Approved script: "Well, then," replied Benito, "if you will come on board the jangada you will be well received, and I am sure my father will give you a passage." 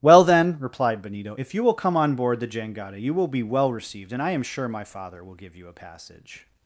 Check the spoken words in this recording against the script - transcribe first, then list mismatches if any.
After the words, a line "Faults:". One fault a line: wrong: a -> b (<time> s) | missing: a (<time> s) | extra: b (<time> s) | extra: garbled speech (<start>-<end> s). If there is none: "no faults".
"Well, then," replied Benito, "if you will come on board the jangada you will be well received, and I am sure my father will give you a passage."
Faults:
no faults